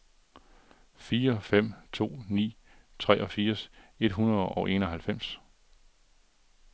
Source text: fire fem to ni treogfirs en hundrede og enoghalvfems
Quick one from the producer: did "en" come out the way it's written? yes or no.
no